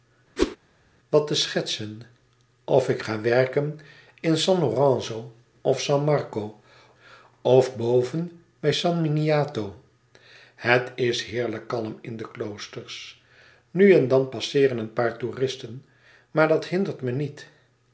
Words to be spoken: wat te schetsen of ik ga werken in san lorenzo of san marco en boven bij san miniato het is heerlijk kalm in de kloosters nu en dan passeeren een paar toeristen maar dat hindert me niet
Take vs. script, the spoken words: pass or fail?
fail